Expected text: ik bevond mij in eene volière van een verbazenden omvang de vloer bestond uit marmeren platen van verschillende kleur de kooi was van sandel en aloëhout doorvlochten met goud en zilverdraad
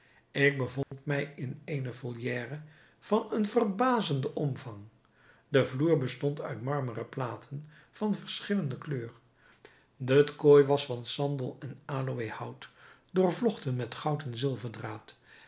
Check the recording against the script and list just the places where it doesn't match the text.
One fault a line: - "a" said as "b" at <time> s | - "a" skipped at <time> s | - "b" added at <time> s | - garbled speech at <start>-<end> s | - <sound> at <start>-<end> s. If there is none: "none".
- dropout at 0.8-0.9 s